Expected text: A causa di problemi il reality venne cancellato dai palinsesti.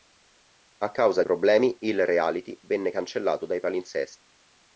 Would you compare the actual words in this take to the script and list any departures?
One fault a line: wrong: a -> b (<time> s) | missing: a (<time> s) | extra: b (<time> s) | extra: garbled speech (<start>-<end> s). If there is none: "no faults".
missing: di (1.2 s)